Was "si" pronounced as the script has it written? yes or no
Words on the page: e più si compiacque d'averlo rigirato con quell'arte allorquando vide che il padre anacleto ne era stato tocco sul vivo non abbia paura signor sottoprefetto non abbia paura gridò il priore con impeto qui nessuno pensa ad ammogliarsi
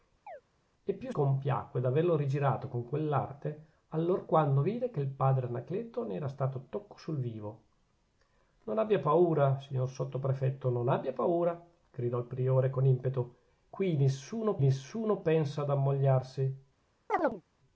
no